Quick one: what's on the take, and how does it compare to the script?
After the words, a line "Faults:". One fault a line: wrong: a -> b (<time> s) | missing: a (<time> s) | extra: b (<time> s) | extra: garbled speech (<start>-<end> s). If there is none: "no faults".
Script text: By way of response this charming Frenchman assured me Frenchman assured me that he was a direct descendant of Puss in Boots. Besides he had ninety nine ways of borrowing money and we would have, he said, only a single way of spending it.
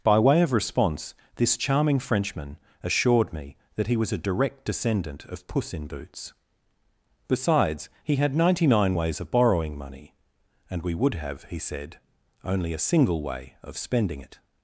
By way of response this charming Frenchman assured me that he was a direct descendant of Puss in Boots. Besides he had ninety nine ways of borrowing money and we would have, he said, only a single way of spending it.
Faults:
missing: Frenchman assured me (3.5 s)